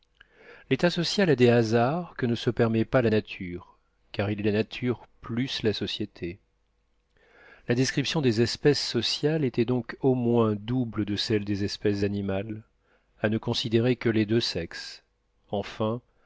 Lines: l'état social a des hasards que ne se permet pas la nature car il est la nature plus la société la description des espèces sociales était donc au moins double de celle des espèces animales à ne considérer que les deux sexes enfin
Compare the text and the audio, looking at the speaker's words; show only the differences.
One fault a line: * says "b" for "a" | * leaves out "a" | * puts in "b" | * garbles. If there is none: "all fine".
all fine